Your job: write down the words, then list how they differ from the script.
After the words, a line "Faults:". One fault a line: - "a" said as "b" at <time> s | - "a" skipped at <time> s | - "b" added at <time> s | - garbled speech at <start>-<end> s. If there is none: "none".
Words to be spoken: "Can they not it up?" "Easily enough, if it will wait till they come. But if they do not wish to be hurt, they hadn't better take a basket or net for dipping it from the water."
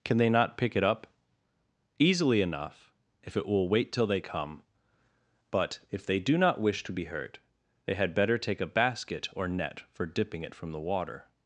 "Can they not pick it up?" "Easily enough, if it will wait till they come. But if they do not wish to be hurt, they had better take a basket or net for dipping it from the water."
Faults:
- "pick" added at 0.6 s
- "hadn't" said as "had" at 7.9 s